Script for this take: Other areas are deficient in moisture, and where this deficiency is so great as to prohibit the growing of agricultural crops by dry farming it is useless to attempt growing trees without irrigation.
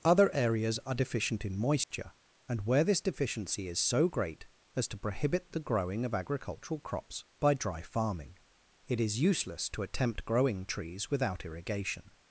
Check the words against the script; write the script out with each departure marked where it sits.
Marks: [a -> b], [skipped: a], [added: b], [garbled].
Other areas are deficient in moisture, and where this deficiency is so great as to prohibit the growing of agricultural crops by dry farming it is useless to attempt growing trees without irrigation.